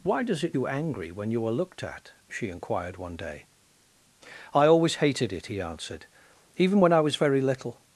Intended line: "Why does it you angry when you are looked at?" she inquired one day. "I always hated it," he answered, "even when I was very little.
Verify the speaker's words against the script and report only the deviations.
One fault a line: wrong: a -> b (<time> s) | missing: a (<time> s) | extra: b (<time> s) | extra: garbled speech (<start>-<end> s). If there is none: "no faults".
no faults